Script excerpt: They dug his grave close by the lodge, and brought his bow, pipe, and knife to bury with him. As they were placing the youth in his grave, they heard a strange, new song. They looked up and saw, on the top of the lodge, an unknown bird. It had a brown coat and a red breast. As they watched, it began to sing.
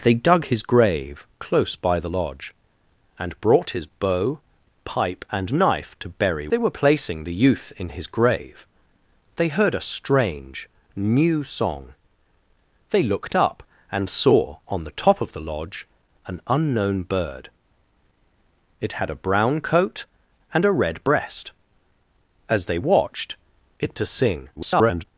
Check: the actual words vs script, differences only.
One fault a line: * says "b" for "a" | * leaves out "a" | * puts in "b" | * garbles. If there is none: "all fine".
* leaves out "with him As"
* leaves out "began"
* garbles